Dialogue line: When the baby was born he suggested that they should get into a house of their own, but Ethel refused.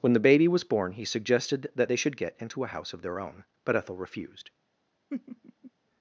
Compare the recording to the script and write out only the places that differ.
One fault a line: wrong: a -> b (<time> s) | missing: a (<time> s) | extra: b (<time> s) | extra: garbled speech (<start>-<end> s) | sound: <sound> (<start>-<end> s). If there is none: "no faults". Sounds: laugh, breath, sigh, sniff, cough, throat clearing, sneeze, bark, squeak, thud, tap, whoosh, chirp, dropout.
sound: laugh (5.1-5.7 s)